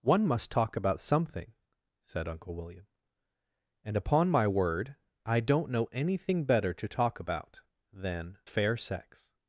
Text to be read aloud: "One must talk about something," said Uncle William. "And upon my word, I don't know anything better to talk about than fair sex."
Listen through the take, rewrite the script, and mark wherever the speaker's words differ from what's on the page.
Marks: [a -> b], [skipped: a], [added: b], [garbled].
"One must talk about something," said Uncle William. "And upon my word, I don't know anything better to talk about than fair sex."